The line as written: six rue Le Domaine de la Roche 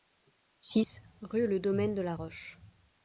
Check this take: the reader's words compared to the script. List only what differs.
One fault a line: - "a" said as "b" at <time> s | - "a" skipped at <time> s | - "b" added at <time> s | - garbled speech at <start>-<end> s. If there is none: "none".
none